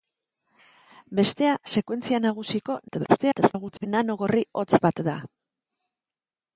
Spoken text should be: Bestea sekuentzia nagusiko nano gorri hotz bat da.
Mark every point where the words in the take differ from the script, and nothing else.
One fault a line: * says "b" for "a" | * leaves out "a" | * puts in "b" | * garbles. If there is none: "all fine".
* garbles